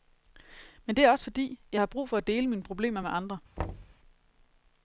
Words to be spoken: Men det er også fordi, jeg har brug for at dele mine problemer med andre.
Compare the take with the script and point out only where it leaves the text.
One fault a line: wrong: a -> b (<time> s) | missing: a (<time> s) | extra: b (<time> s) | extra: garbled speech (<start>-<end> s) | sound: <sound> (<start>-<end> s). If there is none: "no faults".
sound: thud (3.6-4.0 s)